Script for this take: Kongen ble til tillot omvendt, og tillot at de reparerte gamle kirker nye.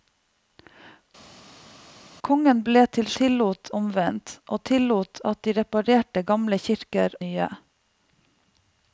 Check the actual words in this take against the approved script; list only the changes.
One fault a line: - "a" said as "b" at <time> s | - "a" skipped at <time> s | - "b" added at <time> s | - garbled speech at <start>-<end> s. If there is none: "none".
none